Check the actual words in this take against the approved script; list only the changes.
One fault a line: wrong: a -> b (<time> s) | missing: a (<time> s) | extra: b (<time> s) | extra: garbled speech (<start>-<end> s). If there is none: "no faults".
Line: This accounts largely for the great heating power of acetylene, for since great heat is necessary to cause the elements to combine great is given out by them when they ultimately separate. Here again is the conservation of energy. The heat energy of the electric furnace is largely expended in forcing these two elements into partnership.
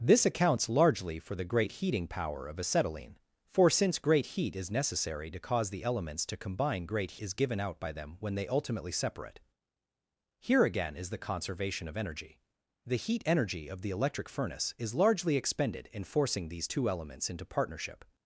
no faults